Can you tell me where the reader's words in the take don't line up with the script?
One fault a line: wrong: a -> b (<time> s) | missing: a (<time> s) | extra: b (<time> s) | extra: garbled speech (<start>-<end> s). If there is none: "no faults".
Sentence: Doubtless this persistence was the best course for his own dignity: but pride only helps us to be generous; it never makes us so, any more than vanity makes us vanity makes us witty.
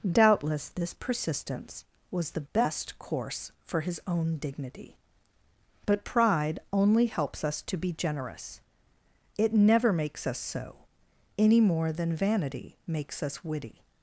missing: vanity makes us (13.4 s)